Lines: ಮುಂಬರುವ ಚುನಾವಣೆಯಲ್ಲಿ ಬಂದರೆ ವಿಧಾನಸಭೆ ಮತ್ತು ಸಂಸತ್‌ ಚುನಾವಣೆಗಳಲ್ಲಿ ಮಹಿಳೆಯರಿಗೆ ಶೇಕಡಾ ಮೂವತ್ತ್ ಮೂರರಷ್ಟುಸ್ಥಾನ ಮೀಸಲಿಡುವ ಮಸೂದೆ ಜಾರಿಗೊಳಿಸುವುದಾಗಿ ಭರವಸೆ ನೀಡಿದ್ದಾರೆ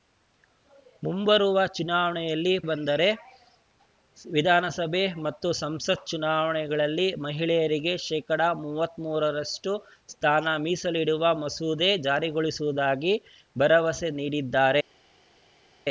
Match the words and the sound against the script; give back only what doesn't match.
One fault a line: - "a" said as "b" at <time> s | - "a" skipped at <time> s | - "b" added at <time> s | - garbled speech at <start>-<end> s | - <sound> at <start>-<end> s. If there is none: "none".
none